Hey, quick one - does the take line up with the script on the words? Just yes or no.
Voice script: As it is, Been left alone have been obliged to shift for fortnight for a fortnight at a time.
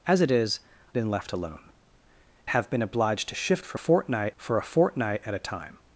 yes